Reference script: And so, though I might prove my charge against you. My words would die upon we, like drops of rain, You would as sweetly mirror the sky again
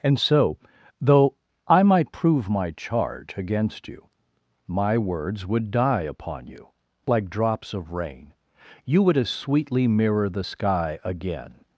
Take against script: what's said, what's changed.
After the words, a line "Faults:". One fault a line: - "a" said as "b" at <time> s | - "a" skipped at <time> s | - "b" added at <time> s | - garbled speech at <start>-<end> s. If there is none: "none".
And so, though I might prove my charge against you. My words would die upon you, like drops of rain, You would as sweetly mirror the sky again
Faults:
- "we" said as "you" at 6.5 s